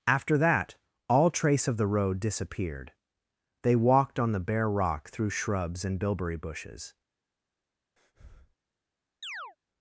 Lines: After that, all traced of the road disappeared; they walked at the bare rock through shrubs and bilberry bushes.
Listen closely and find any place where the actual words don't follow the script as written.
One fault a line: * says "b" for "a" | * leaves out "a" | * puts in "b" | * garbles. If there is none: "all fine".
* says "trace" for "traced"
* says "on" for "at"